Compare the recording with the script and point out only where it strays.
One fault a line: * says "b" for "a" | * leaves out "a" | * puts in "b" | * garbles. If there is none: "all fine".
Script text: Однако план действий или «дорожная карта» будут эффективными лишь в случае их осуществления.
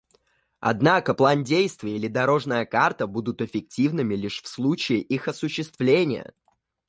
all fine